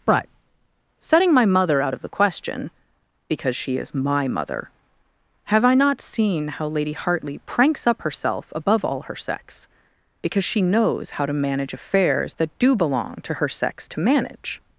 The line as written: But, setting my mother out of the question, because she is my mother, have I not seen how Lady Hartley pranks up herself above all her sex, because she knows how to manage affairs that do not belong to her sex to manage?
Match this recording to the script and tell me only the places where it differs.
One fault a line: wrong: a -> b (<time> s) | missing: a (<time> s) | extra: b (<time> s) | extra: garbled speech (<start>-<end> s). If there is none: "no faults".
missing: not (12.8 s)